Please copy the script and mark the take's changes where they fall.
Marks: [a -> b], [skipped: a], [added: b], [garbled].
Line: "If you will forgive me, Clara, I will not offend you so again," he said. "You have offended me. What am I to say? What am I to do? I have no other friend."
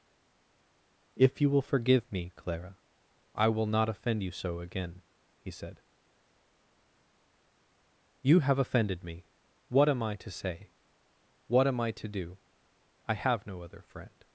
"If you will forgive me, Clara, I will not offend you so again," he said. "You have offended me. What am I to say? What am I to do? I have no other friend."